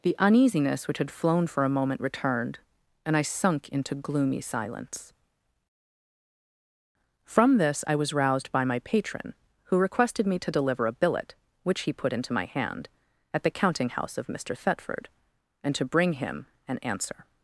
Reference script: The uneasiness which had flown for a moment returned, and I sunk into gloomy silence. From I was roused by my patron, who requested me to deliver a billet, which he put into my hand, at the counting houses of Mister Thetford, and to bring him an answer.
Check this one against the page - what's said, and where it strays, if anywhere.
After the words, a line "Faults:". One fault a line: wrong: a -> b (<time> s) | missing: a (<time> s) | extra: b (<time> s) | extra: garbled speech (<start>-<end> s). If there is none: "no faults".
The uneasiness which had flown for a moment returned, and I sunk into gloomy silence. From this I was roused by my patron, who requested me to deliver a billet, which he put into my hand, at the counting house of Mister Thetford, and to bring him an answer.
Faults:
extra: this (7.6 s)
wrong: houses -> house (13.9 s)